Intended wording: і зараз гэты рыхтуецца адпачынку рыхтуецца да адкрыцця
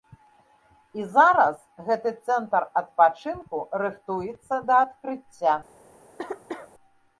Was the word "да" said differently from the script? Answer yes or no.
no